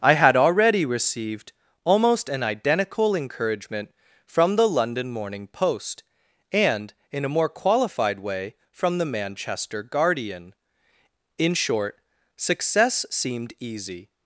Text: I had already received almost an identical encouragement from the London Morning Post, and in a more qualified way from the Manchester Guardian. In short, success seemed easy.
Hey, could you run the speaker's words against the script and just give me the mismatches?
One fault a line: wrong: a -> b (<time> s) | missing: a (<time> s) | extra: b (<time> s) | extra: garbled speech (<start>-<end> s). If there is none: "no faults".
no faults